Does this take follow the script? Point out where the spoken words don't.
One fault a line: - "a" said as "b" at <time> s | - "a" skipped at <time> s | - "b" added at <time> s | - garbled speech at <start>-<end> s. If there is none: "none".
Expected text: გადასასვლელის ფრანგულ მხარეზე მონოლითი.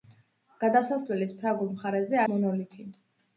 none